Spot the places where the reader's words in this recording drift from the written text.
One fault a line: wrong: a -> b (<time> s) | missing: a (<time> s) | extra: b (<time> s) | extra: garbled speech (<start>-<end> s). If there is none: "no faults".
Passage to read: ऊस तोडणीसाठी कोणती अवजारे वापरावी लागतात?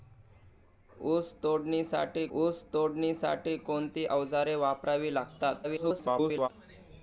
extra: ऊस तोडणीसाठी (2.4 s)
extra: garbled speech (5.6-6.5 s)